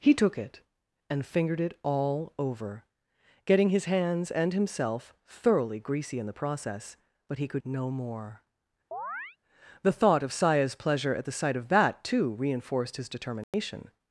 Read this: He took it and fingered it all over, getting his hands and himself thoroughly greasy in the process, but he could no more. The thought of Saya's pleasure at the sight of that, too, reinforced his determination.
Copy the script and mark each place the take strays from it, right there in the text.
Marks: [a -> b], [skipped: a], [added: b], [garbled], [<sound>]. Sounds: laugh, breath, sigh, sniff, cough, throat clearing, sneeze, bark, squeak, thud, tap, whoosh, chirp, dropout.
He took it and fingered it all over, getting his hands and himself thoroughly greasy in the process, but he could no more. [chirp] The thought of Saya's pleasure at the sight of that, too, reinforced his determination. [dropout]